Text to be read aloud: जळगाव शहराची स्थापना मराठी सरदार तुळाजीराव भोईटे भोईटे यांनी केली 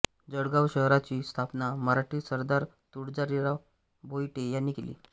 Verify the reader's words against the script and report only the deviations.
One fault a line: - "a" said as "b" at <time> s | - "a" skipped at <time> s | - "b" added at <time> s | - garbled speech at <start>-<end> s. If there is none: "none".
- "भोईटे" skipped at 4.5 s